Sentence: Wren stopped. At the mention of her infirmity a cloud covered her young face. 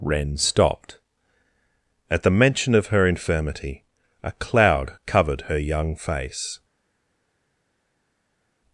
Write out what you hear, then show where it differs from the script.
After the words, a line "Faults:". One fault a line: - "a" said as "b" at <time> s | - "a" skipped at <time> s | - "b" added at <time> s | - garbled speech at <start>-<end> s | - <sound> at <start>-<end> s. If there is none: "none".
Wren stopped. At the mention of her infirmity a cloud covered her young face.
Faults:
none